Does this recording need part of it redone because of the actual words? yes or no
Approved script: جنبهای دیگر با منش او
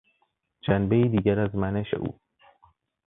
yes